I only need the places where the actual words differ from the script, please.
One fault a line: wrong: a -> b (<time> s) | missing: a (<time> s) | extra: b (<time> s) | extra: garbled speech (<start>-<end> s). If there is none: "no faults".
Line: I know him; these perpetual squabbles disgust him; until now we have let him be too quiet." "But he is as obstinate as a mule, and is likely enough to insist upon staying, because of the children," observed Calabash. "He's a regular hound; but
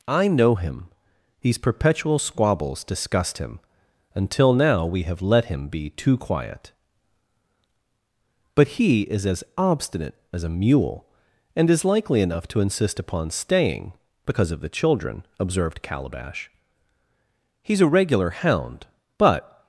no faults